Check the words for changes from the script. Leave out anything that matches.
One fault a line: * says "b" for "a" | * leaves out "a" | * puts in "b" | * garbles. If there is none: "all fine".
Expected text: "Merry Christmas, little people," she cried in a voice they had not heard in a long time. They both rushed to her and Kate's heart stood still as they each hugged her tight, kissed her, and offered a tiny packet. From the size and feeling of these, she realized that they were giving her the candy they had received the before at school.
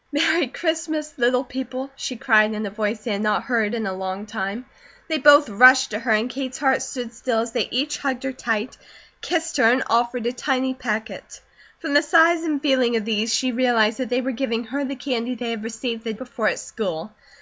all fine